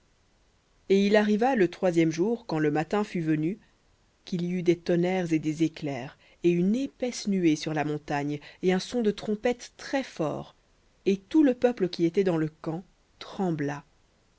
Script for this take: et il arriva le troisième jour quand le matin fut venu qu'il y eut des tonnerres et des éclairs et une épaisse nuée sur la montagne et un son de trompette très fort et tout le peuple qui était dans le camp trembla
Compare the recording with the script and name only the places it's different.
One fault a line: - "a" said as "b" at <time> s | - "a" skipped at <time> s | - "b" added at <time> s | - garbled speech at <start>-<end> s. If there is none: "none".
none